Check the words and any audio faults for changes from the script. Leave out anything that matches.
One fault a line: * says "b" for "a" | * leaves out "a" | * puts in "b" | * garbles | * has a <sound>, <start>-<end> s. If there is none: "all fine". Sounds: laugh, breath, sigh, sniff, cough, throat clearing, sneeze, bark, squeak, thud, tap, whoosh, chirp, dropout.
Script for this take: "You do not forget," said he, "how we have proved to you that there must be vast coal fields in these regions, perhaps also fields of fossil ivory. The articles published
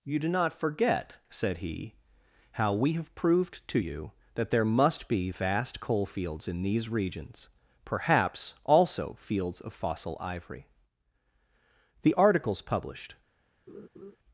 * has a laugh, 13.7-14.2 s